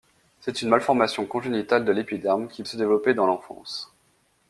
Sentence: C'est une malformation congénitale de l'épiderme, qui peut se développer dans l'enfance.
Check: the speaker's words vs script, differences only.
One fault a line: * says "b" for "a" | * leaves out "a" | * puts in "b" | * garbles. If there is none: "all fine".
* leaves out "peut"